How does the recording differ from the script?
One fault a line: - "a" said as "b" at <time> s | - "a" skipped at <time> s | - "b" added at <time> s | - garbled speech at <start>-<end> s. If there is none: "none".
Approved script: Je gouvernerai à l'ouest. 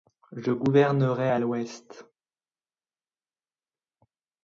none